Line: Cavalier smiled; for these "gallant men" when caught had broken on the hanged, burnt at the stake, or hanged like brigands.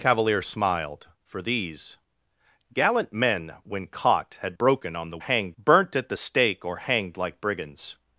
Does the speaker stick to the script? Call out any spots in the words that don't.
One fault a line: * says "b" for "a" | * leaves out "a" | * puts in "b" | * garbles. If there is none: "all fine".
all fine